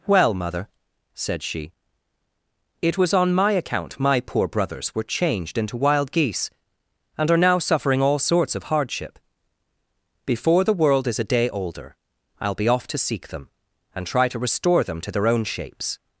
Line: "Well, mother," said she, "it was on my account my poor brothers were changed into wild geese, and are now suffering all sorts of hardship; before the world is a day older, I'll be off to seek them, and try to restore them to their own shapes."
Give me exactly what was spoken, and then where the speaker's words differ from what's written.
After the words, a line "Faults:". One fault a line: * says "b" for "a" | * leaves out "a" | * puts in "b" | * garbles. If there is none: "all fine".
"Well, mother," said she, "it was on my account my poor brothers were changed into wild geese, and are now suffering all sorts of hardship; before the world is a day older, I'll be off to seek them, and try to restore them to their own shapes."
Faults:
all fine